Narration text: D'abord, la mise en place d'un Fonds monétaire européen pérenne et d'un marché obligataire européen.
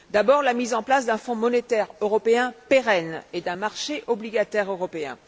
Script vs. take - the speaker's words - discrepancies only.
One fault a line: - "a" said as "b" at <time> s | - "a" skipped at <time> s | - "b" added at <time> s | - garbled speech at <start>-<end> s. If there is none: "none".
none